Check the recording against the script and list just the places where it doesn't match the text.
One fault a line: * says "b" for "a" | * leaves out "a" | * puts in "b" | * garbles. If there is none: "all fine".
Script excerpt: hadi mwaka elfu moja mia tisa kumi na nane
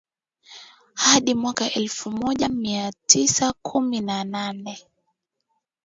all fine